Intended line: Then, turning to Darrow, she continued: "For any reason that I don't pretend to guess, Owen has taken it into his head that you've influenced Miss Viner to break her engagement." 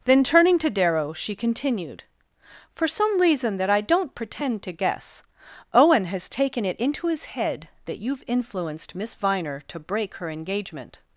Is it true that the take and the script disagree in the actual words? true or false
true